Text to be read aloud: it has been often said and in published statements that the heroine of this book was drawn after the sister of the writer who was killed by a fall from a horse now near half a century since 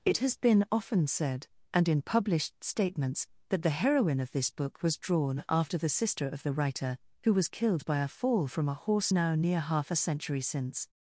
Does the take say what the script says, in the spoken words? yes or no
yes